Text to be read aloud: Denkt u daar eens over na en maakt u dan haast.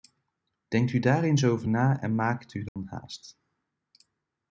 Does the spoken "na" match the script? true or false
true